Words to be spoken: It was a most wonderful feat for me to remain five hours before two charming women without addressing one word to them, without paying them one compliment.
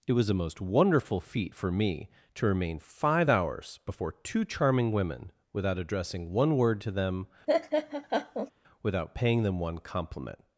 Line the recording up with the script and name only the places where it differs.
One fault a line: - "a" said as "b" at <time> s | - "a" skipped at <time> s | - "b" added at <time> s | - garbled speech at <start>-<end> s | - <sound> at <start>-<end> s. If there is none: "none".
- laugh at 7.5-8.5 s